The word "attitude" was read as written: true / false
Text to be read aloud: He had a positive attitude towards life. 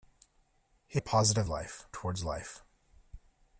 false